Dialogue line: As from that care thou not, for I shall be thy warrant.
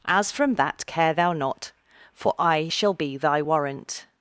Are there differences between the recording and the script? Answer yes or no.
no